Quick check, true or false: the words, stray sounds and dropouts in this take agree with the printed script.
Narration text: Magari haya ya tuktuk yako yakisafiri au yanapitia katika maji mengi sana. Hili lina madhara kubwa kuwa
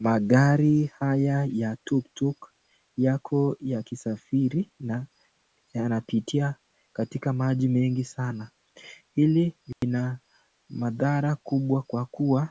false